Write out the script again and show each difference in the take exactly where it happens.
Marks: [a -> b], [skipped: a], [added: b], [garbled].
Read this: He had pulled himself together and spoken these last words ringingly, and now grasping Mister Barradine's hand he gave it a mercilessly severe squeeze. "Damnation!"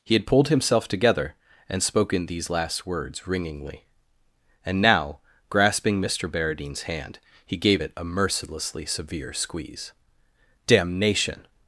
He had pulled himself together and spoken these last words ringingly, and now grasping Mister Barradine's hand he gave it a mercilessly severe squeeze. "Damnation!"